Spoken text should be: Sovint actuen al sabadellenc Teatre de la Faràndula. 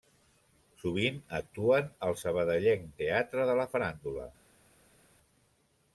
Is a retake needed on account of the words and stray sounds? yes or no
no